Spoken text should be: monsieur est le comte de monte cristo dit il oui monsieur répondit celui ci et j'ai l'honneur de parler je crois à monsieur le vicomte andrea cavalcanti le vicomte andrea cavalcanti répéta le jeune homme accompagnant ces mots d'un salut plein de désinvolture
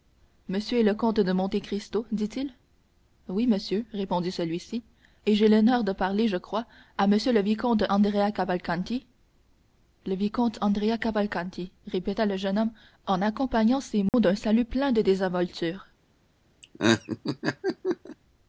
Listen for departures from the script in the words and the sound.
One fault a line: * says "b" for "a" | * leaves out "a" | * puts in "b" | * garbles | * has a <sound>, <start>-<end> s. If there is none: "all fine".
* puts in "en"
* has a dropout, 14.1-14.1 s
* has a laugh, 16.6-18.2 s